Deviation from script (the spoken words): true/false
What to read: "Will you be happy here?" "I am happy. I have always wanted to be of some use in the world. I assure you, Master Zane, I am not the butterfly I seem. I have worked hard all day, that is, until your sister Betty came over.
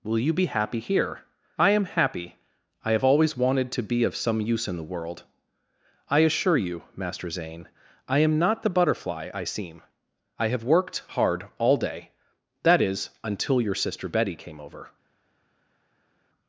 false